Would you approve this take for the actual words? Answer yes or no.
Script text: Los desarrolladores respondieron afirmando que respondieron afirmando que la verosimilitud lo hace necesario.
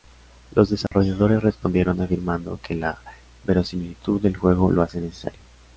no